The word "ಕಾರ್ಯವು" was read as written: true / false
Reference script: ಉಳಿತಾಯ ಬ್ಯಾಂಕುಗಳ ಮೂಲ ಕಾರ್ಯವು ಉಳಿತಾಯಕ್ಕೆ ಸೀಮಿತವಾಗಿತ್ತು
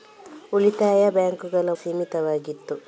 false